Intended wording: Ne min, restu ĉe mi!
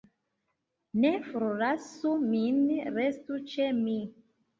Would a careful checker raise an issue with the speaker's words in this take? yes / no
yes